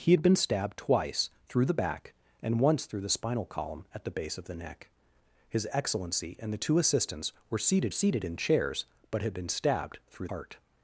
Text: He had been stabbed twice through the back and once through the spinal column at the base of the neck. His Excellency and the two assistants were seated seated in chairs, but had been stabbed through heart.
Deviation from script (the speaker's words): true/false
false